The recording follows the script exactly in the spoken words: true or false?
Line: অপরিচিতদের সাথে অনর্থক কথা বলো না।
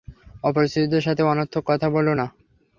true